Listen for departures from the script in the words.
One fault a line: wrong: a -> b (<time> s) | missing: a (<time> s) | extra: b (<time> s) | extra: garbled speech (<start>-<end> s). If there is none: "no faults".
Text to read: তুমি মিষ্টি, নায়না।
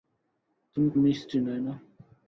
no faults